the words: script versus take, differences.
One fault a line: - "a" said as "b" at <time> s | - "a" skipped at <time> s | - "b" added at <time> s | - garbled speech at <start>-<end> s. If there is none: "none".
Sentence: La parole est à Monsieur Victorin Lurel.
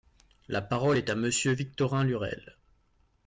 none